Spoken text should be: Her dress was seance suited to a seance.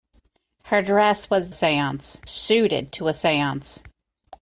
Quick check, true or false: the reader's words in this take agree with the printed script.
true